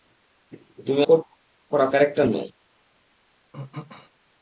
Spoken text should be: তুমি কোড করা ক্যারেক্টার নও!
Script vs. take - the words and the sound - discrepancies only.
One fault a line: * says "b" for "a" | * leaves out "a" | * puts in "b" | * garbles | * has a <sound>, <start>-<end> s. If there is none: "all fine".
* has a throat clearing, 3.5-4.1 s